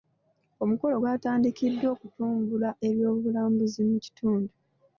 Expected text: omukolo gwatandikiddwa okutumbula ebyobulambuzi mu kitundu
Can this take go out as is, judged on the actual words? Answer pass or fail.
pass